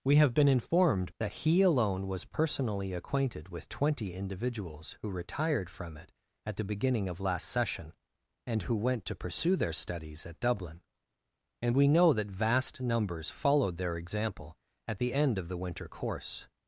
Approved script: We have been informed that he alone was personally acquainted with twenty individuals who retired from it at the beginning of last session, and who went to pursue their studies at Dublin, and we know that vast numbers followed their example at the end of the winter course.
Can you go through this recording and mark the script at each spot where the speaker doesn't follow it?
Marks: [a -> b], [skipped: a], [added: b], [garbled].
We have been informed that he alone was personally acquainted with twenty individuals who retired from it at the beginning of last session, and who went to pursue their studies at Dublin, and we know that vast numbers followed their example at the end of the winter course.